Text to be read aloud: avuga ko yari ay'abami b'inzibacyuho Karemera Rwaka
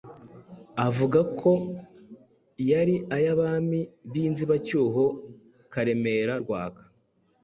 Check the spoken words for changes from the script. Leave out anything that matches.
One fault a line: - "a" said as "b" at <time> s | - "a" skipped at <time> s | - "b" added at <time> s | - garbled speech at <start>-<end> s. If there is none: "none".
none